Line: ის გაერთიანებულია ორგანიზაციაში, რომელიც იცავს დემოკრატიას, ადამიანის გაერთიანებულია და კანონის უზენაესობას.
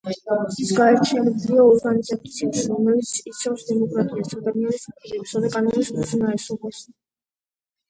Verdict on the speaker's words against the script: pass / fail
fail